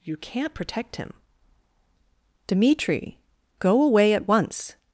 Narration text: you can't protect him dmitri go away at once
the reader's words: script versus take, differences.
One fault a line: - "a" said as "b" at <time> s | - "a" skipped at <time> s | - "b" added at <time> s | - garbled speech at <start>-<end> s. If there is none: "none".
none